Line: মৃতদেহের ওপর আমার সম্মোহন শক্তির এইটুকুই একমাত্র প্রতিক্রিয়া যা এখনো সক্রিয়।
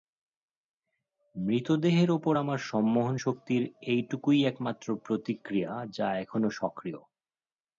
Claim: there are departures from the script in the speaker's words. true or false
false